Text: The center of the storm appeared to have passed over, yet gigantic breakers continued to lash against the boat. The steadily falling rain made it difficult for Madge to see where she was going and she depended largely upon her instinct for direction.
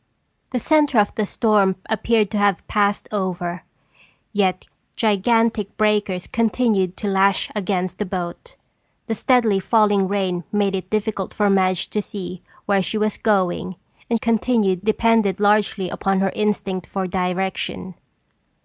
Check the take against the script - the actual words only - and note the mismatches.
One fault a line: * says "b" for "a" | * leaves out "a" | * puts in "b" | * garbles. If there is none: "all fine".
* says "continued" for "she"